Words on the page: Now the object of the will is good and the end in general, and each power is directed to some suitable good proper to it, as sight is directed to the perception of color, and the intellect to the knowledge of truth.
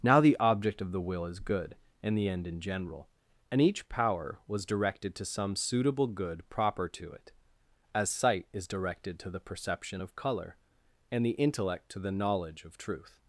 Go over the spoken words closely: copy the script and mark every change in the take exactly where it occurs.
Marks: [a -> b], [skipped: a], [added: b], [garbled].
Now the object of the will is good and the end in general, and each power [is -> was] directed to some suitable good proper to it, as sight is directed to the perception of color, and the intellect to the knowledge of truth.